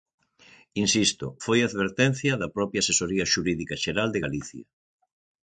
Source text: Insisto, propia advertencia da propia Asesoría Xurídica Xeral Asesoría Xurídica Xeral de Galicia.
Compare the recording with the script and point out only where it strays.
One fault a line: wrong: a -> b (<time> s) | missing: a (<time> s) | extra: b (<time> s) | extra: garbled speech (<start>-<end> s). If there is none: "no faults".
wrong: propia -> foi (1.4 s)
missing: Asesoría Xurídica Xeral (4.1 s)